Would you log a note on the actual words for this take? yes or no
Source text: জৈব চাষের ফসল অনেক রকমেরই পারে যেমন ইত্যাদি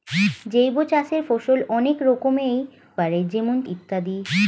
no